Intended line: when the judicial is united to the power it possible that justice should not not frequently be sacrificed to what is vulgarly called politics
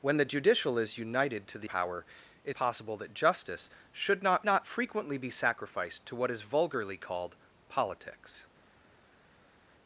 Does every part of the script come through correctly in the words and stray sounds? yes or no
yes